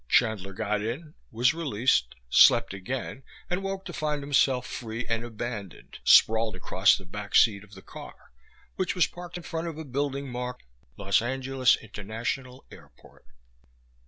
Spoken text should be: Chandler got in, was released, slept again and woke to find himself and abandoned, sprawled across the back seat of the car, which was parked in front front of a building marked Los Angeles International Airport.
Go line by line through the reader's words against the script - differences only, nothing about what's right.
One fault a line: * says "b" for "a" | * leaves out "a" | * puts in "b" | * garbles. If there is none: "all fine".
* puts in "free"
* leaves out "front"